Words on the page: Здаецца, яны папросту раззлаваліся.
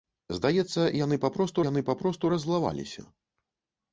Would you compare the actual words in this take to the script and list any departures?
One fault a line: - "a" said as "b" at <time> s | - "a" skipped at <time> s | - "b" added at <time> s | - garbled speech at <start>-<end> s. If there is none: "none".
- "яны папросту" added at 1.7 s